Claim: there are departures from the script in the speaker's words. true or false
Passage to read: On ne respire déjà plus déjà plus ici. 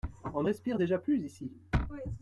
true